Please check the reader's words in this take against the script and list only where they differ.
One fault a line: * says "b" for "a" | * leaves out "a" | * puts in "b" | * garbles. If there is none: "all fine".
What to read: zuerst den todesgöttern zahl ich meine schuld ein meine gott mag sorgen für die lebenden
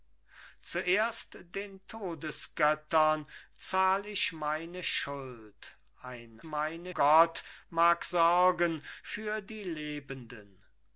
all fine